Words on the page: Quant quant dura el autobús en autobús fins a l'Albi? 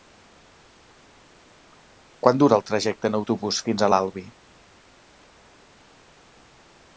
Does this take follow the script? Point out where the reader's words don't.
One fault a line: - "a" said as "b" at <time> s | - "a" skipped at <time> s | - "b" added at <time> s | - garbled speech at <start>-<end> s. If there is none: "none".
- "quant" skipped at 2.4 s
- "autobús" said as "trajecte" at 2.7 s